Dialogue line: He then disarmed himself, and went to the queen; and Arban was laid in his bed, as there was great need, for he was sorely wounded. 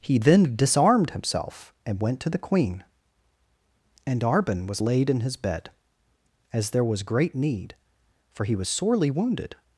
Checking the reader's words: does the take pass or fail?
pass